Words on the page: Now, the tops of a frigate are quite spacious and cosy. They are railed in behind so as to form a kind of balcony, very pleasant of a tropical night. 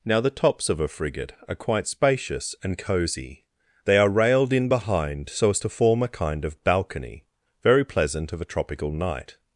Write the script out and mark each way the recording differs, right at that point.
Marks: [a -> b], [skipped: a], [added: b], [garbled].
Now, the tops of a frigate are quite spacious and cosy. They are railed in behind so as to form a kind of balcony, very pleasant of a tropical night.